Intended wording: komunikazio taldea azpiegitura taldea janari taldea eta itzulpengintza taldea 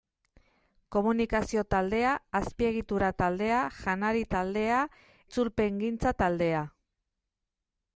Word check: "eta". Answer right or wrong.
wrong